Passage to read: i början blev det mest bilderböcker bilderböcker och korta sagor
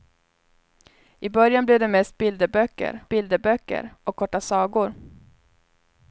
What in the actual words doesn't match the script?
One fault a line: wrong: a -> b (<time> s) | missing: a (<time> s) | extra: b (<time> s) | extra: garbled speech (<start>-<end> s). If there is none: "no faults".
no faults